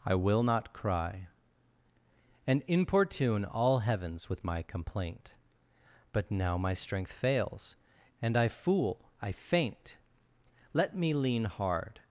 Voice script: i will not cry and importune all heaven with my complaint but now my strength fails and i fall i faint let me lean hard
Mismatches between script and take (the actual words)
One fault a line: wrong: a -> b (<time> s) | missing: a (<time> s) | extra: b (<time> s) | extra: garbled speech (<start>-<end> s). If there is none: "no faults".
wrong: heaven -> heavens (3.8 s)
wrong: fall -> fool (8.5 s)